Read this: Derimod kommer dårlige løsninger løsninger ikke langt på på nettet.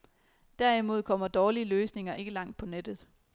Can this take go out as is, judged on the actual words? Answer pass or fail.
fail